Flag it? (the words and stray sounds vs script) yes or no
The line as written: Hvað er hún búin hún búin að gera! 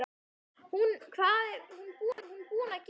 yes